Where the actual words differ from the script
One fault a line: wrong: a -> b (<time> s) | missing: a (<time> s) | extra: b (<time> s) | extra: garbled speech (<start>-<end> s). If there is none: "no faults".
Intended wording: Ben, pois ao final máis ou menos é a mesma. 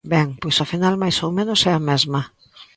no faults